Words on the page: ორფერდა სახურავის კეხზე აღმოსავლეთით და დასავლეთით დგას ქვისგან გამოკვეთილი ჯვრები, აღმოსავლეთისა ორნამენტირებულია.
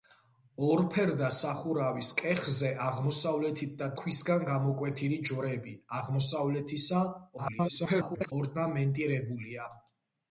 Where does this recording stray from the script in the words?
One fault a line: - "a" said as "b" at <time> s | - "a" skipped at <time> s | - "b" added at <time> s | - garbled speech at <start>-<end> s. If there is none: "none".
- "დასავლეთით დგას" skipped at 3.9 s
- garbled speech at 7.4-8.3 s